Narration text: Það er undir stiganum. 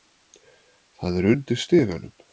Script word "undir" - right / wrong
right